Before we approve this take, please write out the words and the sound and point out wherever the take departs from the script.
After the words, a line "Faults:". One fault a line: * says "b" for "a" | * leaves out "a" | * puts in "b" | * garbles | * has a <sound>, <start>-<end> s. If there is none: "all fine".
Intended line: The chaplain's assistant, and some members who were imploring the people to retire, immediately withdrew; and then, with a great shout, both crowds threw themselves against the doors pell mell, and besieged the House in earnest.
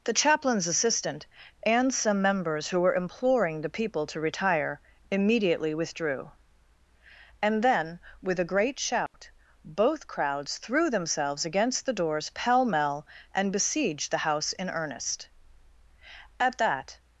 The chaplain's assistant, and some members who were imploring the people to retire, immediately withdrew; and then, with a great shout, both crowds threw themselves against the doors pell mell, and besieged the House in earnest. At that
Faults:
* has a dropout, 9.1-9.1 s
* puts in "At that"